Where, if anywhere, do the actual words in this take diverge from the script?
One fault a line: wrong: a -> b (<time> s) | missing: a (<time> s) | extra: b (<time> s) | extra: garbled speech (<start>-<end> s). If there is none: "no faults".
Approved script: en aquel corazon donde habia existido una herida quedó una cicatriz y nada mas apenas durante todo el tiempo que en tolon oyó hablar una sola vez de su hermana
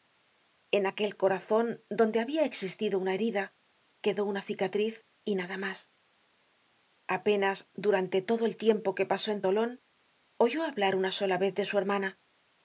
extra: pasó (9.1 s)